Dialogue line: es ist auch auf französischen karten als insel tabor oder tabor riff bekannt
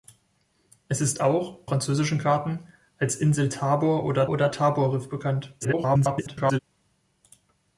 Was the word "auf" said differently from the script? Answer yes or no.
yes